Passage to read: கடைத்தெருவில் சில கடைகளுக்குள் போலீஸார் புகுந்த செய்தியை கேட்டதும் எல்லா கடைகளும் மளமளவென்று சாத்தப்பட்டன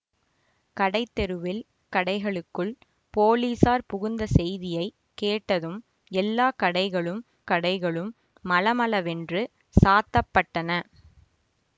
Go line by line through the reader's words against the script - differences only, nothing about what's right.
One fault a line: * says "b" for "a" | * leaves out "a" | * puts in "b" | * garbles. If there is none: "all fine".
* leaves out "சில"
* puts in "கடைகளும்"